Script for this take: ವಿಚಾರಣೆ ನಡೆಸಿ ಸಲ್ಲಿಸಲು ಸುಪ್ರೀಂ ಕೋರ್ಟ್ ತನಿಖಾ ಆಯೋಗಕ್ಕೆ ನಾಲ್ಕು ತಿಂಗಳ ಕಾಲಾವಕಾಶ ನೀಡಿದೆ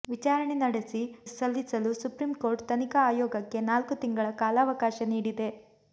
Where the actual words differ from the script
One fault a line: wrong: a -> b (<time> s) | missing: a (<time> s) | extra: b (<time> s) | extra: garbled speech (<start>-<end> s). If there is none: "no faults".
no faults